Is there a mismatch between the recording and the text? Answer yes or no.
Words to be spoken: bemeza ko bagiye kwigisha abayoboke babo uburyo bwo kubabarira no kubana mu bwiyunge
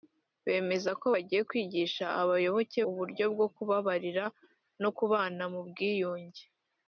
yes